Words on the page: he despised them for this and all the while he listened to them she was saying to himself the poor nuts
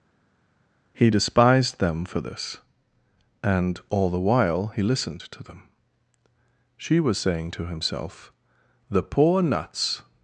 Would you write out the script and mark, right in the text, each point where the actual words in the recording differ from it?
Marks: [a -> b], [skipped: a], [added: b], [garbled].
he despised them for this and all the while he listened to them she was saying to himself the poor nuts